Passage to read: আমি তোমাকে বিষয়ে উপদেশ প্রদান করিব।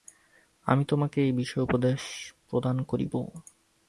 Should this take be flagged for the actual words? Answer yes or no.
yes